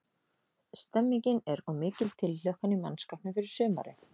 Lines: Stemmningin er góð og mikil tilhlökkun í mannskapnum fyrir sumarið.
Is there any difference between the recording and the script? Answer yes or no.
yes